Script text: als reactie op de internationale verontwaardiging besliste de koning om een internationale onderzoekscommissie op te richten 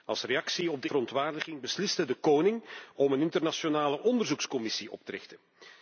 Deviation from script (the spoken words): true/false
true